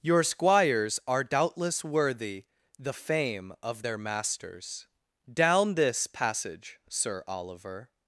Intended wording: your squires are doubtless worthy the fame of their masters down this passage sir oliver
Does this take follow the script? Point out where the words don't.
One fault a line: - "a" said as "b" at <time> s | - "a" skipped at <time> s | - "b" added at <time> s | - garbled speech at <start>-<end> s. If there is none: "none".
none